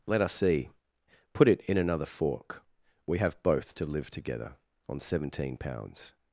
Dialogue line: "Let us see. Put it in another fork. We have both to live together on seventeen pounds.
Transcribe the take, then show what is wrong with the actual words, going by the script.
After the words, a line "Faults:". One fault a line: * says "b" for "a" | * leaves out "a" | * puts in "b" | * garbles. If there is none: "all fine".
"Let us see. Put it in another fork. We have both to live together on seventeen pounds.
Faults:
all fine